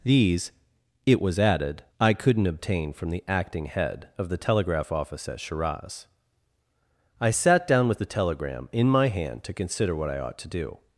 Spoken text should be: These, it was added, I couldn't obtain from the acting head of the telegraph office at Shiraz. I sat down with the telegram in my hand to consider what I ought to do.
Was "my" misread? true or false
false